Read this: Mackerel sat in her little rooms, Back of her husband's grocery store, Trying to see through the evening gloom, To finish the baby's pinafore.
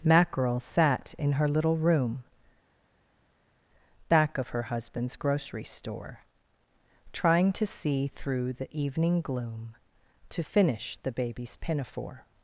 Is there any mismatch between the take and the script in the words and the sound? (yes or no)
yes